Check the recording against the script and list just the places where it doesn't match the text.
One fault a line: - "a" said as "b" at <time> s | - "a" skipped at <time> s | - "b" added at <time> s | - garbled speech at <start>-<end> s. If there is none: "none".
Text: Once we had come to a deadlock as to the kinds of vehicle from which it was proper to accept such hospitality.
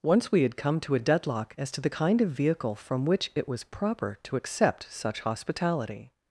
- "kinds" said as "kind" at 1.9 s